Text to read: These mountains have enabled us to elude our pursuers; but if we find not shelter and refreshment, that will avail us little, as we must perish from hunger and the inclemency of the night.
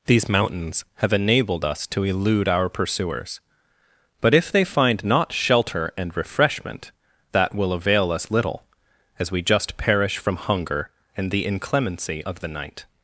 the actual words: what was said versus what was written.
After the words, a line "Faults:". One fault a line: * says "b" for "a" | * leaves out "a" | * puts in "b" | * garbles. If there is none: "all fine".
These mountains have enabled us to elude our pursuers; but if they find not shelter and refreshment, that will avail us little, as we just perish from hunger and the inclemency of the night.
Faults:
* says "they" for "we"
* says "just" for "must"